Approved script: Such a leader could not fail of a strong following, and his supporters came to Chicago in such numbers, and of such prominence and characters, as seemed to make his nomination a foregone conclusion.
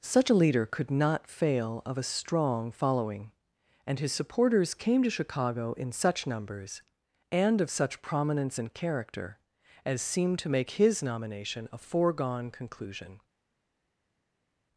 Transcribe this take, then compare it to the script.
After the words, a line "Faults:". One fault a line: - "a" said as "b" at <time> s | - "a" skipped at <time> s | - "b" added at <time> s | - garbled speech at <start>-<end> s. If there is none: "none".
Such a leader could not fail of a strong following, and his supporters came to Chicago in such numbers, and of such prominence and character, as seemed to make his nomination a foregone conclusion.
Faults:
- "characters" said as "character" at 8.7 s